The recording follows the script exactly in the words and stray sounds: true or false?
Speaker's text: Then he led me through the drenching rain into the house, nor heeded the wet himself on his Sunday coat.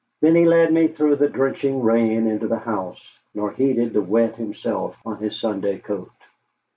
true